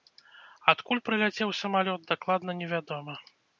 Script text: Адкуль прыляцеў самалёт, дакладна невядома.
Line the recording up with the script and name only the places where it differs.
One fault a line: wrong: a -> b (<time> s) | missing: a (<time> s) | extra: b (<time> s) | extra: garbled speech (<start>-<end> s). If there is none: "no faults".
no faults